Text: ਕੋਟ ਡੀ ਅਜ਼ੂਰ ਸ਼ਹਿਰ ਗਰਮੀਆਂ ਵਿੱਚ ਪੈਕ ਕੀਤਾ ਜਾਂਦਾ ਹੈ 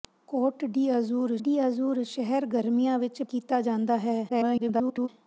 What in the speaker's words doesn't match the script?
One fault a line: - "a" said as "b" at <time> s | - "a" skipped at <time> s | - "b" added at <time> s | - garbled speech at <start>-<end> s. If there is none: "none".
- "ਡੀ ਅਜ਼ੂਰ" added at 1.4 s
- "ਪੈਕ" skipped at 3.2 s
- garbled speech at 4.3-5.1 s